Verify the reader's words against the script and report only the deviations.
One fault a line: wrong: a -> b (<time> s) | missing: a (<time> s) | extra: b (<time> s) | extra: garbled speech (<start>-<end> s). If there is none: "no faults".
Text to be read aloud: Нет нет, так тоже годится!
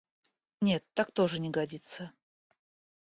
missing: нет (0.8 s)
extra: не (1.4 s)